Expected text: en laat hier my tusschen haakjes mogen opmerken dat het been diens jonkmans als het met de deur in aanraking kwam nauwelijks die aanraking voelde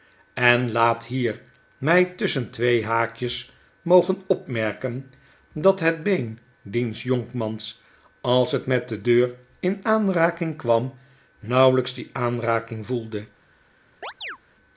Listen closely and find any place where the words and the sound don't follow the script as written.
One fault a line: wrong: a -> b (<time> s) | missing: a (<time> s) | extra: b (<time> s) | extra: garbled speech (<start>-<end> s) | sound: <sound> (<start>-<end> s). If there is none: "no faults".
extra: twee (2.5 s)
sound: chirp (14.0-14.4 s)